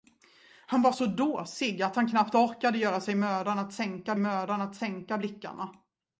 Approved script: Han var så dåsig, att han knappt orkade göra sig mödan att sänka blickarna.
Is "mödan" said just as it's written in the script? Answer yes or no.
yes